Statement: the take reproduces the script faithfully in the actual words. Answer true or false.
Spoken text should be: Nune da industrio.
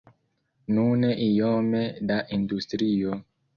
false